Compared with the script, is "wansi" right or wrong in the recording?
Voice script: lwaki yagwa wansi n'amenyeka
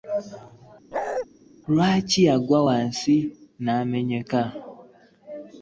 right